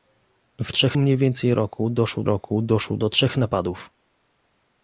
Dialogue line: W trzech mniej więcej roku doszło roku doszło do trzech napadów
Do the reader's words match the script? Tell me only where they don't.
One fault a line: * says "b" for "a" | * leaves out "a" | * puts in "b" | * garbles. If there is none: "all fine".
all fine